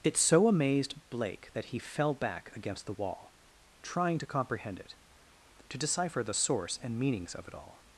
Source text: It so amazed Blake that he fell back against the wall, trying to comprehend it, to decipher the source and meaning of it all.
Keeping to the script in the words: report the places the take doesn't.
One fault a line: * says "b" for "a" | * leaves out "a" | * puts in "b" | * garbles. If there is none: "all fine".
* says "meanings" for "meaning"